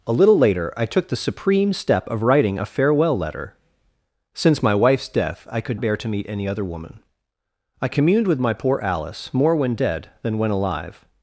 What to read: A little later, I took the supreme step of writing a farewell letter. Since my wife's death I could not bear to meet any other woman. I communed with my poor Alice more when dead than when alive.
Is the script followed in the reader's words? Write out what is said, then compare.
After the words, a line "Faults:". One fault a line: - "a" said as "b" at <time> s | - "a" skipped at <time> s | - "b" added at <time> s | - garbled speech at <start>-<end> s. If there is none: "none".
A little later, I took the supreme step of writing a farewell letter. Since my wife's death I could bear to meet any other woman. I communed with my poor Alice more when dead than when alive.
Faults:
- "not" skipped at 5.8 s